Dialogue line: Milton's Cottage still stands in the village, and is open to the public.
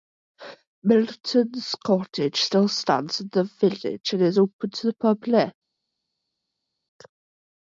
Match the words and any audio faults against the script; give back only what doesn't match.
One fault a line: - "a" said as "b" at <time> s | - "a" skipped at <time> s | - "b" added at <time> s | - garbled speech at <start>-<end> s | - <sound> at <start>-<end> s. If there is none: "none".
none